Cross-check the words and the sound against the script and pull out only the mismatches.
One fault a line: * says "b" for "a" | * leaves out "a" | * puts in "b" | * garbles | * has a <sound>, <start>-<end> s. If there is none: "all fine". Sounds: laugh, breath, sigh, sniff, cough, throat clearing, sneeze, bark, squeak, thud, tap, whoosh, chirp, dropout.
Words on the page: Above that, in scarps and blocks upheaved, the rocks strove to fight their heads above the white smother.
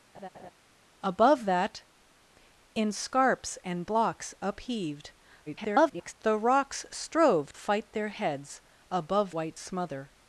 * has a laugh, 0.1-0.5 s
* garbles
* leaves out "to"
* leaves out "the"